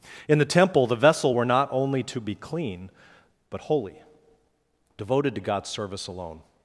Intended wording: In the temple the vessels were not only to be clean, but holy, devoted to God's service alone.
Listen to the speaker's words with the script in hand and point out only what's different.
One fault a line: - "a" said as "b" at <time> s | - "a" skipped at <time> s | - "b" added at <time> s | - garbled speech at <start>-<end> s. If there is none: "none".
- "vessels" said as "vessel" at 0.9 s